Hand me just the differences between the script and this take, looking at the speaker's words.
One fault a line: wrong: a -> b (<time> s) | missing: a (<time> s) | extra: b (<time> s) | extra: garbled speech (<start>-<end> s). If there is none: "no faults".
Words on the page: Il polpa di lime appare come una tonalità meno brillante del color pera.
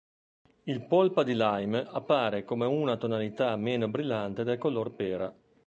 no faults